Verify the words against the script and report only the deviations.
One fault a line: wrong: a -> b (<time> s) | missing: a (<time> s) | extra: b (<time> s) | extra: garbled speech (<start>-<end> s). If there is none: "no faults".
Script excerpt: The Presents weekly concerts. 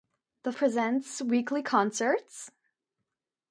no faults